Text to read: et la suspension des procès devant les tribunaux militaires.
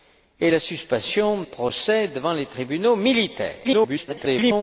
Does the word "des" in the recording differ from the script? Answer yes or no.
yes